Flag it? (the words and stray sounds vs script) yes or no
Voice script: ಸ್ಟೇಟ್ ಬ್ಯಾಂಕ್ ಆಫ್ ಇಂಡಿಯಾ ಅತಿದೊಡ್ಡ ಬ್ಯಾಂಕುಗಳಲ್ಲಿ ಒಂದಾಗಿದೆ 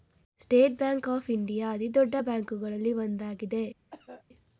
yes